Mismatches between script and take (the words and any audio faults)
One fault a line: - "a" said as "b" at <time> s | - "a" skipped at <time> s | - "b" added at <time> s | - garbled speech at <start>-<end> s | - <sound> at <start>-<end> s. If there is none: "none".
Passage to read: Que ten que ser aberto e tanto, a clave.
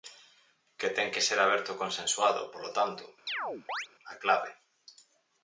- "consensuado polo" added at 1.8 s
- chirp at 3.3-3.9 s